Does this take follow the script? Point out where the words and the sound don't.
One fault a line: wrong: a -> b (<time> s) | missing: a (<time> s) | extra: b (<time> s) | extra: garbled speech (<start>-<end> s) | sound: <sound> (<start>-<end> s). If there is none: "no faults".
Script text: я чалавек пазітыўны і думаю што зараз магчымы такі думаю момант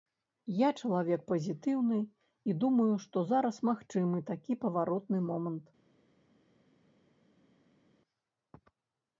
wrong: думаю -> паваротны (4.6 s)